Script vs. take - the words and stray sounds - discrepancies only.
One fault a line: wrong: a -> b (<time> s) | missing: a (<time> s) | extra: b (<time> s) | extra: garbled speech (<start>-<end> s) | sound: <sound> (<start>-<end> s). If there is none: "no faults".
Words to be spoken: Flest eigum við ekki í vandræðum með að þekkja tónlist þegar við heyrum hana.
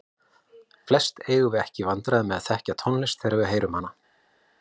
no faults